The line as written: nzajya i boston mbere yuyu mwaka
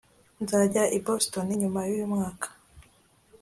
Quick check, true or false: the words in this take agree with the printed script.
false